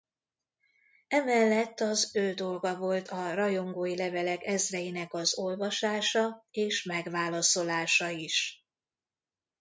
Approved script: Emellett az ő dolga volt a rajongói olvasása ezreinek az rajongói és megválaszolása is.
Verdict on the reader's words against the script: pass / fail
fail